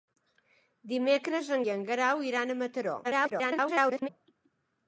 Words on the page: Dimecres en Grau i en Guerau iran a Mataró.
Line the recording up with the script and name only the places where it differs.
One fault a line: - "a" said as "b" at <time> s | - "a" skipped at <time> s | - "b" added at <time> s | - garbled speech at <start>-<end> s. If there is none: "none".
- "Grau" skipped at 1.6 s
- garbled speech at 3.0-4.1 s